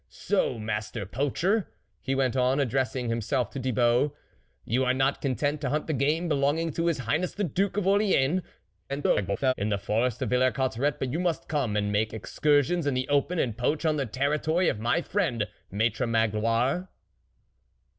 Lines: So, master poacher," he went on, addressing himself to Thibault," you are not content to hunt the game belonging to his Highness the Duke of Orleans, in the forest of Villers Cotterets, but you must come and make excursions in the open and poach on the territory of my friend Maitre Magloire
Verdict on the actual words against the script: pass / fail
fail